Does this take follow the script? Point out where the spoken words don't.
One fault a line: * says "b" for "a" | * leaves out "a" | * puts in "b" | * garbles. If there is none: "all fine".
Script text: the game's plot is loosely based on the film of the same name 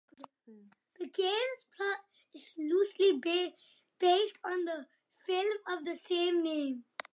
all fine